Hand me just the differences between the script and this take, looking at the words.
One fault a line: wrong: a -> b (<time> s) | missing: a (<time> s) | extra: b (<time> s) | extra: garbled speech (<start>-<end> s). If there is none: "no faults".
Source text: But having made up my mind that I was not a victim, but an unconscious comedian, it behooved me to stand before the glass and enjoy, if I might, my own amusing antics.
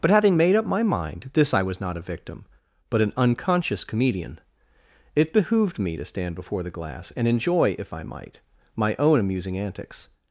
wrong: that -> this (1.3 s)